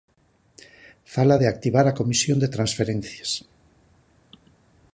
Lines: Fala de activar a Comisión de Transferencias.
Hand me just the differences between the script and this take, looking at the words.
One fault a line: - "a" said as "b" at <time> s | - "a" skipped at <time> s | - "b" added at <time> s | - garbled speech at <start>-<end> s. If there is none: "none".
none